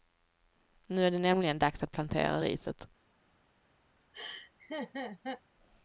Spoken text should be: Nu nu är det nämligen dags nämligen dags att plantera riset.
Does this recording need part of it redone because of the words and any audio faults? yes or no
yes